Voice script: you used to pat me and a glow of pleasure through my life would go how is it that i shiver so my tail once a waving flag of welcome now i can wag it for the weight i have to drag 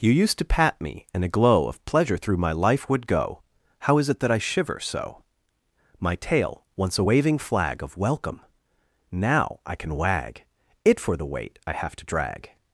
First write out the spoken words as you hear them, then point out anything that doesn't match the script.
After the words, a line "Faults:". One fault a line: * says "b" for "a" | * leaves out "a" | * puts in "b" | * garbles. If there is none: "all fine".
you used to pat me and a glow of pleasure through my life would go how is it that i shiver so my tail once a waving flag of welcome now i can wag it for the weight i have to drag
Faults:
all fine